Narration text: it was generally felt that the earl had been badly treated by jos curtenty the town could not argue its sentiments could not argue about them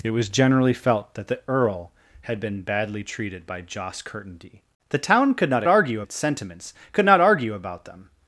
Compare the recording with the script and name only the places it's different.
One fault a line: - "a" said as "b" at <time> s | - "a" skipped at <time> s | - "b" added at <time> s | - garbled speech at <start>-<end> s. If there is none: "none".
none